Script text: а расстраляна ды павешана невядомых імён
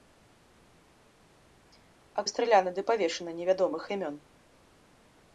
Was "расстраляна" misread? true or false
false